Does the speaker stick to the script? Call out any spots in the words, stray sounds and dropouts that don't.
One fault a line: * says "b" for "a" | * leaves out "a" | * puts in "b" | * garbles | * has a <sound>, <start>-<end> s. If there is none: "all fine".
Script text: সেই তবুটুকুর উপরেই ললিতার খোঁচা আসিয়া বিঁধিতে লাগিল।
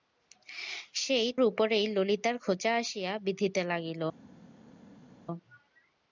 * leaves out "তবুটুকুর"